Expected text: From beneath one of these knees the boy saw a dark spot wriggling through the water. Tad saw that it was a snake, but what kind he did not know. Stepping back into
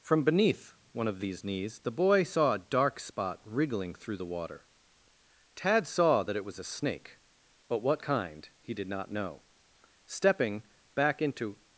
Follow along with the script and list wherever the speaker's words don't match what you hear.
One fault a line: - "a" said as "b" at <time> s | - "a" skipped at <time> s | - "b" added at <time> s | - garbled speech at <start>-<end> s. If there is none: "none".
none